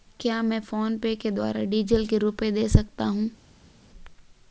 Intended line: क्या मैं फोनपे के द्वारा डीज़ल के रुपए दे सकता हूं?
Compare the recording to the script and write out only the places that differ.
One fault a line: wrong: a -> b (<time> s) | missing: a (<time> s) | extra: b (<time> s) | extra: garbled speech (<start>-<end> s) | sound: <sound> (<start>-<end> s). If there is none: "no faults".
no faults